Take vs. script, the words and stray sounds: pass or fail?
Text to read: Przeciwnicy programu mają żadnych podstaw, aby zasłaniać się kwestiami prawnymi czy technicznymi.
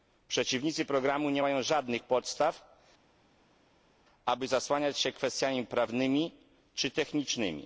fail